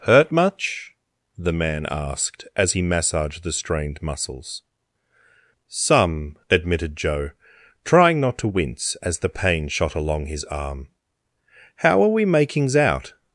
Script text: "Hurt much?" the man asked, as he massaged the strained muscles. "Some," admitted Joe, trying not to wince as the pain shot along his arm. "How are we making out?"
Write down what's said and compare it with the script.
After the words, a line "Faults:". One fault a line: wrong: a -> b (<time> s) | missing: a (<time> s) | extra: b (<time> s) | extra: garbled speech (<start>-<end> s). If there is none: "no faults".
"Hurt much?" the man asked, as he massaged the strained muscles. "Some," admitted Joe, trying not to wince as the pain shot along his arm. "How are we makings out?"
Faults:
wrong: making -> makings (12.3 s)